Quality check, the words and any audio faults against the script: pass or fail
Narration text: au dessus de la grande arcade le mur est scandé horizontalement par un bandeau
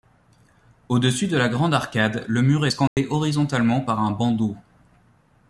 fail